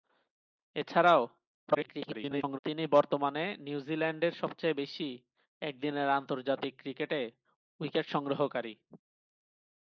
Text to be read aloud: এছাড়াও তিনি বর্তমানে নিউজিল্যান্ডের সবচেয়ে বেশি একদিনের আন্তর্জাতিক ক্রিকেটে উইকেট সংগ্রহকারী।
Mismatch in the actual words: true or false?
true